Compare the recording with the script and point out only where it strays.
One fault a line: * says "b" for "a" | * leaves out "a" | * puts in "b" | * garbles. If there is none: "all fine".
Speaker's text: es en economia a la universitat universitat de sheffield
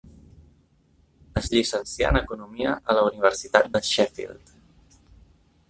* puts in "llicencià"
* leaves out "universitat"